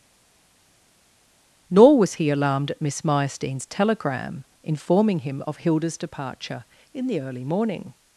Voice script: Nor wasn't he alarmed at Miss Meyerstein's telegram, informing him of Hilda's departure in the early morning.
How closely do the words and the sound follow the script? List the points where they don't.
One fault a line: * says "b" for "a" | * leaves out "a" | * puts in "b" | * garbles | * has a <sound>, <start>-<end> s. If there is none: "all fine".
* says "was" for "wasn't"